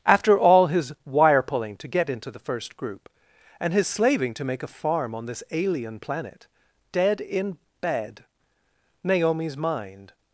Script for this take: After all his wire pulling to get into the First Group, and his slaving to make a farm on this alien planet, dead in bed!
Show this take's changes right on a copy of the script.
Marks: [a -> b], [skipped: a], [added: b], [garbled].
After all his wire pulling to get into the First Group, and his slaving to make a farm on this alien planet, dead in bed! [added: Naomi's mind]